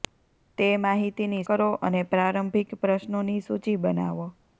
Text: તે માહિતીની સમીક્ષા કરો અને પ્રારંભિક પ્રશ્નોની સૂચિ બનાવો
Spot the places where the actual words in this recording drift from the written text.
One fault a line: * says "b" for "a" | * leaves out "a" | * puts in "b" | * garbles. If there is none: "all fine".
* leaves out "સમીક્ષા"